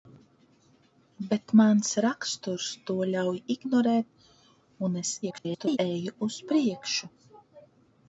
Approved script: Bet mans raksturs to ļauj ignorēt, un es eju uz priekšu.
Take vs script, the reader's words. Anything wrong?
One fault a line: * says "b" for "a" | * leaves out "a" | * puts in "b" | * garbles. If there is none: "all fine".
* garbles